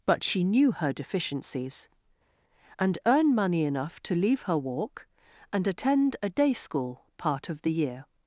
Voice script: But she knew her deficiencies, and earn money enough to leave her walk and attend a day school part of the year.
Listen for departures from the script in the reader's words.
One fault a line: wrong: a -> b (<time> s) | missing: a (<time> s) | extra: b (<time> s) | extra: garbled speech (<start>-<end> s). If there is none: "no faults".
no faults